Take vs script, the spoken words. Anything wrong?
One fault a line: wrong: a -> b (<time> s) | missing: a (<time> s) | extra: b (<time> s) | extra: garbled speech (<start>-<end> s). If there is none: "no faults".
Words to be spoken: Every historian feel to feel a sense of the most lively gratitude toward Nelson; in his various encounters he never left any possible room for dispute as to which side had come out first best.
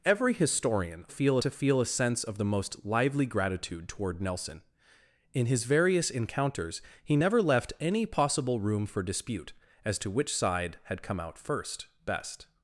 no faults